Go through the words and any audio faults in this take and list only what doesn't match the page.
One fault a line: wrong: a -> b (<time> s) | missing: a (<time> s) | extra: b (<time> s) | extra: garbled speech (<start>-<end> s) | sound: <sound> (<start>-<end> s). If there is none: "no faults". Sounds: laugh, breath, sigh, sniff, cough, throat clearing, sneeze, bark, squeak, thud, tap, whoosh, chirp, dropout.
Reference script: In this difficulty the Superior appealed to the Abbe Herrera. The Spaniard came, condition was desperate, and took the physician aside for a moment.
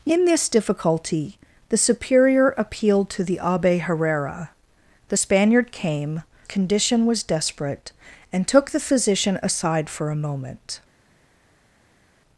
no faults